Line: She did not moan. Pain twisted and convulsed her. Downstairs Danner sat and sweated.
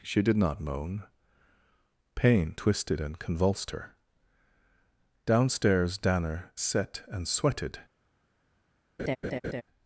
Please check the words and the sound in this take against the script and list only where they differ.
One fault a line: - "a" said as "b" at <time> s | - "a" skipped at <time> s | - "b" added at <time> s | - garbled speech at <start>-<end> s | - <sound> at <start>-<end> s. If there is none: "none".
- "sat" said as "set" at 6.5 s
- laugh at 9.0-9.6 s